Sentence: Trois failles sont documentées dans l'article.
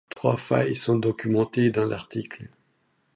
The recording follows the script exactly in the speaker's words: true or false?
true